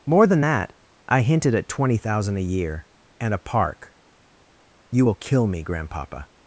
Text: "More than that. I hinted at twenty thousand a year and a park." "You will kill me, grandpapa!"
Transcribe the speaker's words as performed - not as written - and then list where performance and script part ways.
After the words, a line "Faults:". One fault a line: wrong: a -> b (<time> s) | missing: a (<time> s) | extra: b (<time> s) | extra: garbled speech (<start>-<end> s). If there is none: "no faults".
"More than that. I hinted at twenty thousand a year and a park." "You will kill me, grandpapa!"
Faults:
no faults